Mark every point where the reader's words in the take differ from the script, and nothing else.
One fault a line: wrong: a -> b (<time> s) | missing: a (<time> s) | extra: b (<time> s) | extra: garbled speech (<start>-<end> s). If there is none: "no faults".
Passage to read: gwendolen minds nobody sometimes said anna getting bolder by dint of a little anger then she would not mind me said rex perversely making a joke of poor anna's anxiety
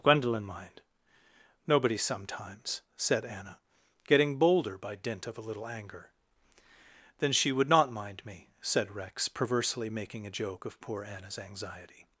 wrong: minds -> mind (0.4 s)